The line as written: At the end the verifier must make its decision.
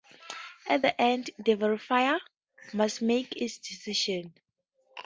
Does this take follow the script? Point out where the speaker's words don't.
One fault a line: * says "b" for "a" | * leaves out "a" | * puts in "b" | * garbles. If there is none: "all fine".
all fine